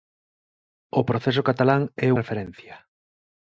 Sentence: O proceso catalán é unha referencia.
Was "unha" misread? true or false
true